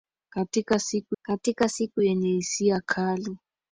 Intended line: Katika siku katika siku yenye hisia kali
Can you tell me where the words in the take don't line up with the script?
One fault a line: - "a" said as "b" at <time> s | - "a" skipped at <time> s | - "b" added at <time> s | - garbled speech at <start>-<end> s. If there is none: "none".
none